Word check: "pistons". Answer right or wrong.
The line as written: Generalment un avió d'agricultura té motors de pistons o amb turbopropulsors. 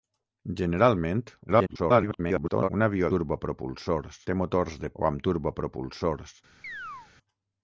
wrong